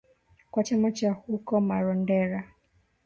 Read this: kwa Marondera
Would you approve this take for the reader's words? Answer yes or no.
no